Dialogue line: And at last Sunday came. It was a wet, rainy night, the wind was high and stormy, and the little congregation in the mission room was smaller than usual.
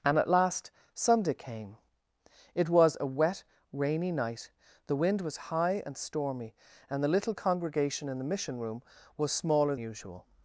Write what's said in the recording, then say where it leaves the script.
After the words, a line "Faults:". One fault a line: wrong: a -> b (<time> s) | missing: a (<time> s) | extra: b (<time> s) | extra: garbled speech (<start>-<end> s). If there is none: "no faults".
And at last Sunday came. It was a wet, rainy night, the wind was high and stormy, and the little congregation in the mission room was smaller usual.
Faults:
missing: than (9.8 s)